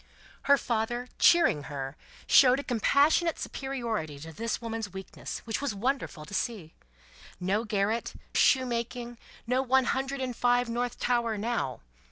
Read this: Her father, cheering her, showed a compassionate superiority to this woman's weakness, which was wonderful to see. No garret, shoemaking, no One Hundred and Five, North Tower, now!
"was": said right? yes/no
yes